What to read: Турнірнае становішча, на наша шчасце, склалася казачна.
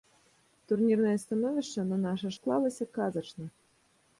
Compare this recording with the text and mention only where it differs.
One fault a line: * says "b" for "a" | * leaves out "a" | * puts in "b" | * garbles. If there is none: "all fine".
* leaves out "шчасце"